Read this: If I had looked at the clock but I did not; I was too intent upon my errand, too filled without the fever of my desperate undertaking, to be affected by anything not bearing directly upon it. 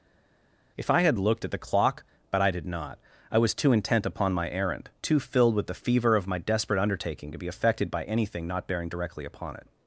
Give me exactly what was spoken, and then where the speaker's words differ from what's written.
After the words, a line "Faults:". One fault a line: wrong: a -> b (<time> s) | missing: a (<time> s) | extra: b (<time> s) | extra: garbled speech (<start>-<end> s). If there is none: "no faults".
If I had looked at the clock but I did not; I was too intent upon my errand, too filled with the fever of my desperate undertaking, to be affected by anything not bearing directly upon it.
Faults:
wrong: without -> with (5.5 s)